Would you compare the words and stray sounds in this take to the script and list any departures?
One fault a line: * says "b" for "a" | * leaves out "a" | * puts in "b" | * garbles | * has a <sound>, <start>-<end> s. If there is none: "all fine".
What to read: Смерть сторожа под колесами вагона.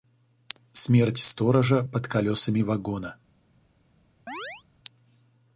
* has a chirp, 4.3-4.6 s